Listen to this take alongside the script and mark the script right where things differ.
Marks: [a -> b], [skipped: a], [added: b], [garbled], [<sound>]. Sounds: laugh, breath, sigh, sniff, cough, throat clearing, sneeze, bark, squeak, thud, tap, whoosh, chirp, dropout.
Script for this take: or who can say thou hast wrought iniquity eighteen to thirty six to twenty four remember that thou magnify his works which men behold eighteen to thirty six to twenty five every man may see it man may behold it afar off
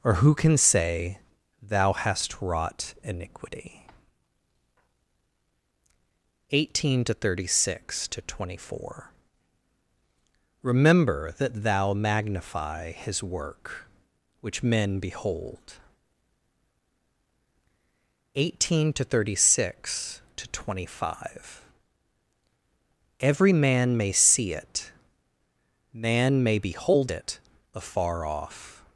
or who can say thou hast wrought iniquity eighteen to thirty six to twenty four remember that thou magnify his [works -> work] which men behold eighteen to thirty six to twenty five every man may see it man may behold it afar off